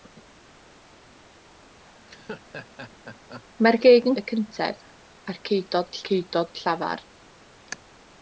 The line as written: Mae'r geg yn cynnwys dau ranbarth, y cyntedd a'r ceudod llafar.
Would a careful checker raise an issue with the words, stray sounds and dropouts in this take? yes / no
yes